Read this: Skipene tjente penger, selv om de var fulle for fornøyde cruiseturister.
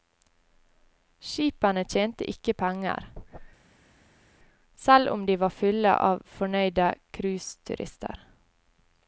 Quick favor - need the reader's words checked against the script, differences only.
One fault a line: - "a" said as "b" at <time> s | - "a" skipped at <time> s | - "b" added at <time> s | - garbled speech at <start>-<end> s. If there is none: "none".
- "ikke" added at 2.3 s
- "for" said as "av" at 6.1 s